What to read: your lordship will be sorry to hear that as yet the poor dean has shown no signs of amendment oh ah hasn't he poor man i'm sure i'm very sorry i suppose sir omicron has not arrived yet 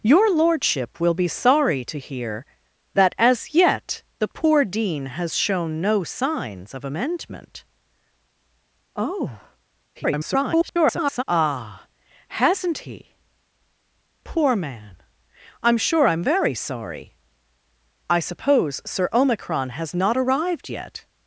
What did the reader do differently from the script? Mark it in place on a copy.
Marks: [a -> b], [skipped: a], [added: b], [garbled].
your lordship will be sorry to hear that as yet the poor dean has shown no signs of amendment oh [garbled] ah hasn't he poor man i'm sure i'm very sorry i suppose sir omicron has not arrived yet